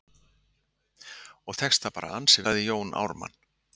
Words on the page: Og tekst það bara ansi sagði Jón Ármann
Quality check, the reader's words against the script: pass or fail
pass